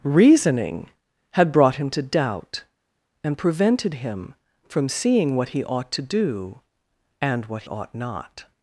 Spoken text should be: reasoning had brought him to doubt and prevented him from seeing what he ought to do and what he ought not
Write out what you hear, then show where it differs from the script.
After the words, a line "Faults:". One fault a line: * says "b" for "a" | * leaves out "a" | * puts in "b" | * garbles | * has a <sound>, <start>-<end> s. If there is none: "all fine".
reasoning had brought him to doubt and prevented him from seeing what he ought to do and what ought not
Faults:
* leaves out "he"